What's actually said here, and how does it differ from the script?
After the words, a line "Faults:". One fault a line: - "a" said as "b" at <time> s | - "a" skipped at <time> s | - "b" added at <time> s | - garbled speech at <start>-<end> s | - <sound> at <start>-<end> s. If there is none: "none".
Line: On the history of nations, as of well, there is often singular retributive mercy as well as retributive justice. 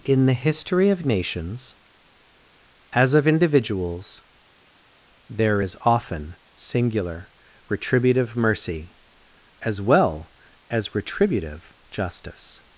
In the history of nations, as of individuals, there is often singular retributive mercy as well as retributive justice.
Faults:
- "On" said as "In" at 0.0 s
- "well" said as "individuals" at 3.3 s